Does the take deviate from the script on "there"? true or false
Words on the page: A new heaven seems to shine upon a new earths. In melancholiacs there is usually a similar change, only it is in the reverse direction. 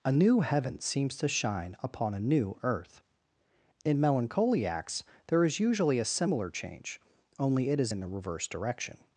false